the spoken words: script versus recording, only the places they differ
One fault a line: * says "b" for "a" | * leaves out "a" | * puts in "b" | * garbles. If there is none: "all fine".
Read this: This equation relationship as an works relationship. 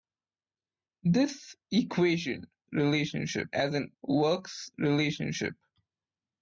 all fine